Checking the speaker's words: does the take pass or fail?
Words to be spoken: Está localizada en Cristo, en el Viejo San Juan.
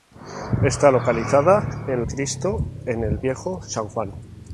pass